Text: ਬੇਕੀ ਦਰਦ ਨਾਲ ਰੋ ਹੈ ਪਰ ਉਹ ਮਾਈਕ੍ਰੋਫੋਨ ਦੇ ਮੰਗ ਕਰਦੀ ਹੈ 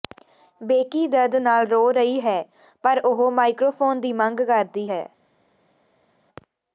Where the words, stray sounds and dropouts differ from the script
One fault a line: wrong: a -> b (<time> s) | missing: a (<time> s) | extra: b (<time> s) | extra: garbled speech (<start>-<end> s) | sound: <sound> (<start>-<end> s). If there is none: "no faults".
extra: ਰਹੀ (1.9 s)
wrong: ਦੇ -> ਦੀ (4.0 s)